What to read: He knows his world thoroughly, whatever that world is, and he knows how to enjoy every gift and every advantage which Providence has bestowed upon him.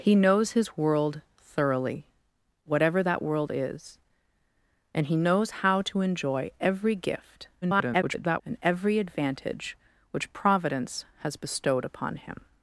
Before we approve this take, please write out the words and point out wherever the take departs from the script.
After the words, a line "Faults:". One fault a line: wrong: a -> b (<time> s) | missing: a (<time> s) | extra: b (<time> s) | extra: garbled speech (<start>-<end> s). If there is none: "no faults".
He knows his world thoroughly, whatever that world is, and he knows how to enjoy every gift [garbled] and every advantage which Providence has bestowed upon him.
Faults:
extra: garbled speech (7.6-8.4 s)